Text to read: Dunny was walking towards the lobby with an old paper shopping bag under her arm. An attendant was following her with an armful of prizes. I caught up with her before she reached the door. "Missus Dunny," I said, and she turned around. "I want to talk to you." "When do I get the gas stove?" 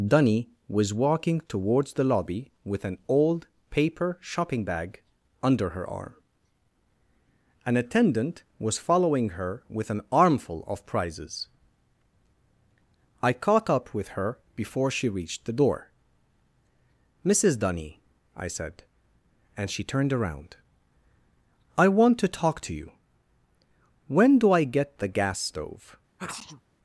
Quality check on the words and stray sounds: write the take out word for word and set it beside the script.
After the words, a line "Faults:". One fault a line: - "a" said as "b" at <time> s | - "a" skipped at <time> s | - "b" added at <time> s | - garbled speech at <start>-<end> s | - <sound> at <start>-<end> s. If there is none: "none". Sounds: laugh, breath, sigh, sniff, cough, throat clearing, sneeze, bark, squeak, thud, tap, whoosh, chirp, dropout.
Dunny was walking towards the lobby with an old paper shopping bag under her arm. An attendant was following her with an armful of prizes. I caught up with her before she reached the door. "Missus Dunny," I said, and she turned around. "I want to talk to you." "When do I get the gas stove?"
Faults:
- sneeze at 26.2-26.6 s